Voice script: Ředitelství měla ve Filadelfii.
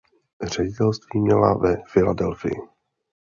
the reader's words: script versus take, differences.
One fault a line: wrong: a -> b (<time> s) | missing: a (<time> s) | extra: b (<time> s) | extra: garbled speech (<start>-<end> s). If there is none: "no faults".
no faults